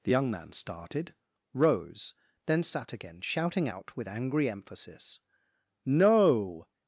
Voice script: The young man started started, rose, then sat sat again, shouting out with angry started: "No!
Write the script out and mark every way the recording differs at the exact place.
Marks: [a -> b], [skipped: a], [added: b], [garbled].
The young man started [skipped: started,] rose, then sat [skipped: sat] again, shouting out with angry [started: -> emphasis] "No!